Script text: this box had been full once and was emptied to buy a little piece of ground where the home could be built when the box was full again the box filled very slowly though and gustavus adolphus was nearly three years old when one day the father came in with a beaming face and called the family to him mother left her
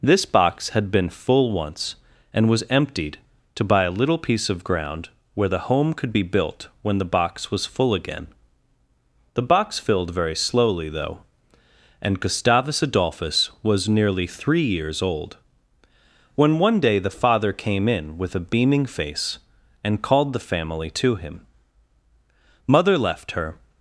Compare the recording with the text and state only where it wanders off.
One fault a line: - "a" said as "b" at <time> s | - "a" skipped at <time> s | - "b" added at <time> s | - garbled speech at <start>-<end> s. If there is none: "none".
none